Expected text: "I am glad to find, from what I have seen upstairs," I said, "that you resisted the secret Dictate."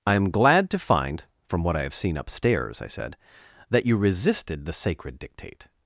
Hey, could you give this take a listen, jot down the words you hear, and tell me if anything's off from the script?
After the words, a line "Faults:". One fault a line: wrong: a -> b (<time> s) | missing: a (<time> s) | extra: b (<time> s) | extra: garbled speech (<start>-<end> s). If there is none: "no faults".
"I am glad to find, from what I have seen upstairs," I said, "that you resisted the sacred Dictate."
Faults:
wrong: secret -> sacred (4.7 s)